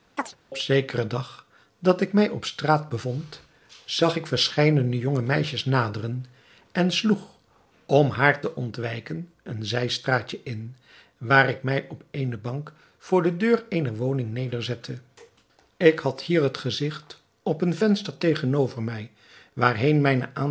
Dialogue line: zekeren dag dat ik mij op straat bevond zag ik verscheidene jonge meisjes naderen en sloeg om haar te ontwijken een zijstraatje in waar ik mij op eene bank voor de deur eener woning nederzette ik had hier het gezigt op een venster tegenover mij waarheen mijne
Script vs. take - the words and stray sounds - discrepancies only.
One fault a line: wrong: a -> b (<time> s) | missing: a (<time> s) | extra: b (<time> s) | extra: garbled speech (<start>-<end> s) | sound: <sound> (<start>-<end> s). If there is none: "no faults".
sound: chirp (0.2-0.4 s)